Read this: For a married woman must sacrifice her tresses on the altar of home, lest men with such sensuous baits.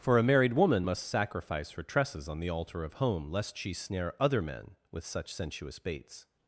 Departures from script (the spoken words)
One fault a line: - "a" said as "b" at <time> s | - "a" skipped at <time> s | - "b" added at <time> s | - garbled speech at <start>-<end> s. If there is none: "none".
- "she snare other" added at 3.6 s